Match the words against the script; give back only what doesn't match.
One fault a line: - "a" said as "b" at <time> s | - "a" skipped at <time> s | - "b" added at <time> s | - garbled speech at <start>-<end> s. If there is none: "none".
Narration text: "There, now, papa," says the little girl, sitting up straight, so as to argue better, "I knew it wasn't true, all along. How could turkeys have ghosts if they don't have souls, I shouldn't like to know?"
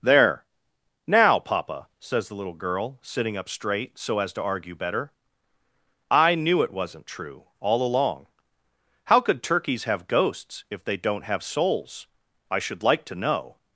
- "shouldn't" said as "should" at 12.6 s